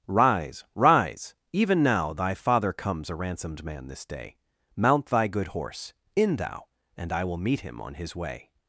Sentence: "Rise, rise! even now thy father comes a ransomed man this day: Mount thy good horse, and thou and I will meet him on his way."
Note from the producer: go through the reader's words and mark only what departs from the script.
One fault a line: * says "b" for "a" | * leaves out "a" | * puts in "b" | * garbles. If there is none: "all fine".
* says "in" for "and"